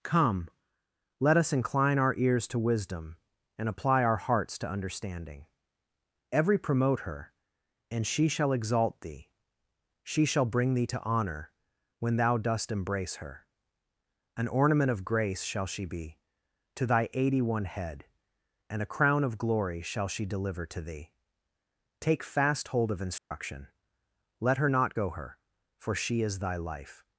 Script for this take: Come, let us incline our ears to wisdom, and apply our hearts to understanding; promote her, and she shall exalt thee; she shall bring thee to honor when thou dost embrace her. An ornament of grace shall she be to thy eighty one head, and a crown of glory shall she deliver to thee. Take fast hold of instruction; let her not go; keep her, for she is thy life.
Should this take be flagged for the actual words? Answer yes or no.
yes